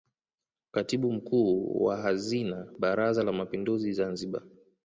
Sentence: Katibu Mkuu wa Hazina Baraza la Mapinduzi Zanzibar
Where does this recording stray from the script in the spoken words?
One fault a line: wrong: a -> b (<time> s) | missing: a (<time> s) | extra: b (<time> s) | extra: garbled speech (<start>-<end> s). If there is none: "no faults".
no faults